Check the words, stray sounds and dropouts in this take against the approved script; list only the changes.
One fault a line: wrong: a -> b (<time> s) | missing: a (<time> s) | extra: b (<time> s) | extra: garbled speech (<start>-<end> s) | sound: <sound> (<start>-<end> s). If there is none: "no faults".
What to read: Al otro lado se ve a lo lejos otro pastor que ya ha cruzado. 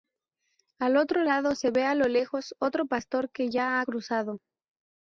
no faults